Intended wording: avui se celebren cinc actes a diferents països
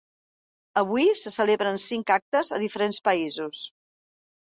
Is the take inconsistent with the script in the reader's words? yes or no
no